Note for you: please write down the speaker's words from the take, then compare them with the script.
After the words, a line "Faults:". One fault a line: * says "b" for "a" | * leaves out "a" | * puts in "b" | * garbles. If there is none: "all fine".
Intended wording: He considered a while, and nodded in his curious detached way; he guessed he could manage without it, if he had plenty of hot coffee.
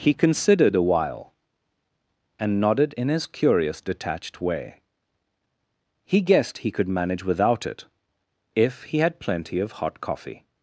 He considered a while, and nodded in his curious detached way; he guessed he could manage without it, if he had plenty of hot coffee.
Faults:
all fine